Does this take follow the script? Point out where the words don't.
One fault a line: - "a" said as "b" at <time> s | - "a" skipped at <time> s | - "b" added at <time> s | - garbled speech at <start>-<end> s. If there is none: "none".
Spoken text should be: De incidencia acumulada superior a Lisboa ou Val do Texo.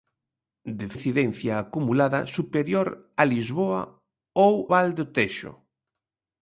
none